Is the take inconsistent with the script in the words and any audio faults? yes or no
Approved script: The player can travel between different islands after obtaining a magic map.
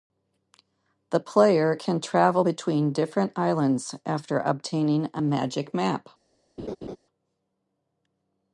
yes